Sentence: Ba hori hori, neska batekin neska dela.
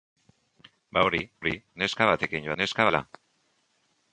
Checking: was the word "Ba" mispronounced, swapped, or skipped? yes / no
no